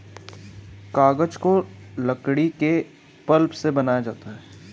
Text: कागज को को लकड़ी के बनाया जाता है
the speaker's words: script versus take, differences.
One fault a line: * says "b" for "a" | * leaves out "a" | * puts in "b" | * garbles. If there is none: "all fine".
* leaves out "को"
* puts in "पल्प से"